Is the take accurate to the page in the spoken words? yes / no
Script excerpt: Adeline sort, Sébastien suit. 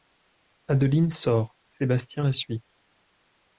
no